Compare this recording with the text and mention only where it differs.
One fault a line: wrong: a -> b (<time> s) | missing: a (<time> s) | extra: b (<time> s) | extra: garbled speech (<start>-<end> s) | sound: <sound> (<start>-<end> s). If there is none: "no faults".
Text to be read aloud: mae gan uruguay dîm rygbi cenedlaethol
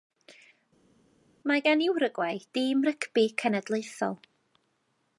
no faults